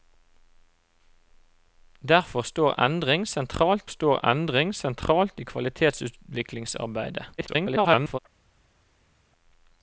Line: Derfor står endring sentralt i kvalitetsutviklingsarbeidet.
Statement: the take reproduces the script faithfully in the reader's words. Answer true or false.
false